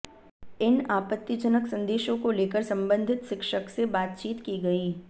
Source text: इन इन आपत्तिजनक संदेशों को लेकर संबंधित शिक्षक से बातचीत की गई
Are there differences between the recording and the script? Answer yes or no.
yes